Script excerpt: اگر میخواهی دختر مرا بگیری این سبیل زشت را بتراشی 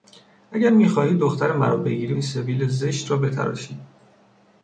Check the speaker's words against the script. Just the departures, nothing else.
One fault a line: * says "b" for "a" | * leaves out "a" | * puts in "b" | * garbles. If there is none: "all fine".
all fine